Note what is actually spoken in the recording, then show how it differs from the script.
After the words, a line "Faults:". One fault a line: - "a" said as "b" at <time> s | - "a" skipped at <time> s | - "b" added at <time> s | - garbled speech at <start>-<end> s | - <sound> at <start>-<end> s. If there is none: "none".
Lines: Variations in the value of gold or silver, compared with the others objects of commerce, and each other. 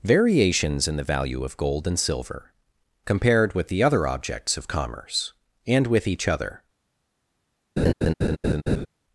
Variations in the value of gold and silver, compared with the other objects of commerce, and with each other.
Faults:
- "or" said as "and" at 1.9 s
- "others" said as "other" at 3.8 s
- "with" added at 5.8 s
- laugh at 7.8-8.9 s